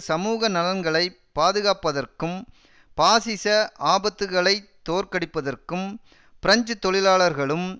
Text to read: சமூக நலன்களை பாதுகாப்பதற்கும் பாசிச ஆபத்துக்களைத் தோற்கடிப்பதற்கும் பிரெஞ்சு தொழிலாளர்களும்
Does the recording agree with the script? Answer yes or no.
yes